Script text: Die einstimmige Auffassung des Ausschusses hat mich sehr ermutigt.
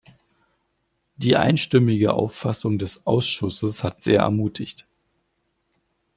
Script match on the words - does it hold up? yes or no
no